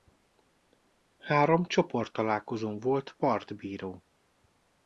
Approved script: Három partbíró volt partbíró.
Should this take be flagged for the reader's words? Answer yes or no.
yes